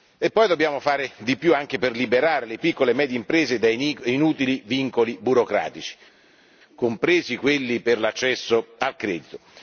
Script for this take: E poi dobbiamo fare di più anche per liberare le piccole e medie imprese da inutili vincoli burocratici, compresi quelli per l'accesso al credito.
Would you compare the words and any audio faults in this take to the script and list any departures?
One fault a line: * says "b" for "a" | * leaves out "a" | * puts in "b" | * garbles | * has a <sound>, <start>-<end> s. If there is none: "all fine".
all fine